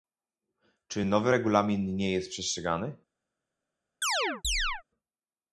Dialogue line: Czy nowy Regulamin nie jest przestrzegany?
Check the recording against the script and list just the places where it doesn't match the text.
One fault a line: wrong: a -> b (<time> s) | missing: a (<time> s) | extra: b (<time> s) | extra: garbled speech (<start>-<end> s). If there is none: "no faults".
no faults